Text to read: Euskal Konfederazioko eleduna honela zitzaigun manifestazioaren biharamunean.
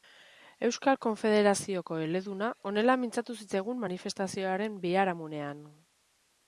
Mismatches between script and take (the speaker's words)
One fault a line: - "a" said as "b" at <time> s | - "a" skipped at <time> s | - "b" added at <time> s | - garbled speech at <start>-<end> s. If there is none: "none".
- "mintzatu" added at 3.0 s